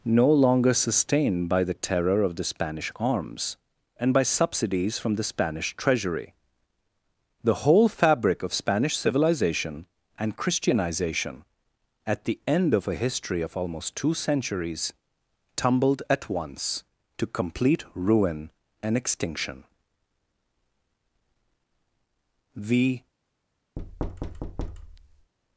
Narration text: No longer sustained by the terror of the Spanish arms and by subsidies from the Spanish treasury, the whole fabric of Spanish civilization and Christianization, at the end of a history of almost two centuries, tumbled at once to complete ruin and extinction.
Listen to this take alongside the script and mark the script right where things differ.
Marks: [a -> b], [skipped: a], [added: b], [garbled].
No longer sustained by the terror of the Spanish arms and by subsidies from the Spanish treasury, the whole fabric of Spanish civilization and Christianization, at the end of a history of almost two centuries, tumbled at once to complete ruin and extinction. [added: The]